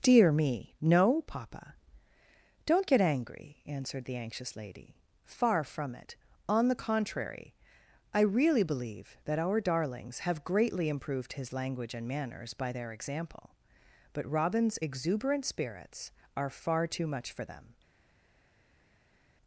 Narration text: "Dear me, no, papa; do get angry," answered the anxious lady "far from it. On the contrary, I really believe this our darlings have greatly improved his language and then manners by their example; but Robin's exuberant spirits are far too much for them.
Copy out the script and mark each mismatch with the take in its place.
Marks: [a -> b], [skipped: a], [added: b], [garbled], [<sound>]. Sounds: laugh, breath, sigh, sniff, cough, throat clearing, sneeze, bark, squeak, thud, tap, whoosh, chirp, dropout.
"Dear me, no, papa; [do -> don't] get angry," answered the anxious lady "far from it. On the contrary, I really believe [this -> that] our darlings have greatly improved his language and [skipped: then] manners by their example; but Robin's exuberant spirits are far too much for them.